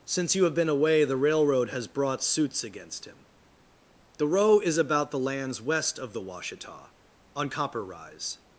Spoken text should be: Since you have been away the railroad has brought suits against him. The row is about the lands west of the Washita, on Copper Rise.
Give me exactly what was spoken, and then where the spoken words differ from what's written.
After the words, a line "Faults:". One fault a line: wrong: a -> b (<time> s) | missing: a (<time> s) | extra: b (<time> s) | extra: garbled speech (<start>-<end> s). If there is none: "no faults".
Since you have been away the railroad has brought suits against him. The row is about the lands west of the Washita, on Copper Rise.
Faults:
no faults